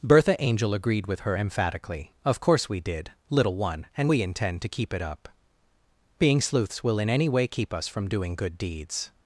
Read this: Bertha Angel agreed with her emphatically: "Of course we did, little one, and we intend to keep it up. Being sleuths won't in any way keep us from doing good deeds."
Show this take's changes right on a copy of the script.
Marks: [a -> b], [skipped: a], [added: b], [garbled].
Bertha Angel agreed with her emphatically: "Of course we did, little one, and we intend to keep it up. Being sleuths [won't -> will] in any way keep us from doing good deeds."